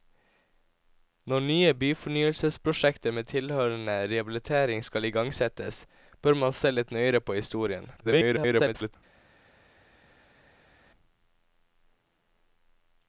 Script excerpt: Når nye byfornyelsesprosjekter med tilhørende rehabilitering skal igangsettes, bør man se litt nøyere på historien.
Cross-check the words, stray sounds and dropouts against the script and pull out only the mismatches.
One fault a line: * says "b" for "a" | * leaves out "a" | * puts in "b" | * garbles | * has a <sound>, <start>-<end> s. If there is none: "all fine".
* garbles